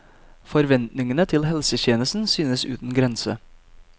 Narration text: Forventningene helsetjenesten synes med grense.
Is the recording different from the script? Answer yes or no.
yes